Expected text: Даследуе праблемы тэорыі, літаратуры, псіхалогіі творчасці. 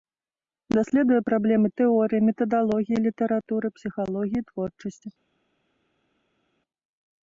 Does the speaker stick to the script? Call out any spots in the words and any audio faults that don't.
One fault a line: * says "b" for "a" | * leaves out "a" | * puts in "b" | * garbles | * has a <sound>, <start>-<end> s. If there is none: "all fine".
* puts in "метадалогіі"